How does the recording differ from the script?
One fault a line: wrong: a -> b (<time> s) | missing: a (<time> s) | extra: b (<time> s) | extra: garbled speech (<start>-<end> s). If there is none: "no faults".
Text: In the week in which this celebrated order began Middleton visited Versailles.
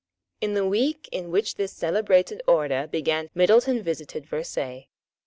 no faults